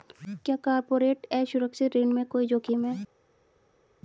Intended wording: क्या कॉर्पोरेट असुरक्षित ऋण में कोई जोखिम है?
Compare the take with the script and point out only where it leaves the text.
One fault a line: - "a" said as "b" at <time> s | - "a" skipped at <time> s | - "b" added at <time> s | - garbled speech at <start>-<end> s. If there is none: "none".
none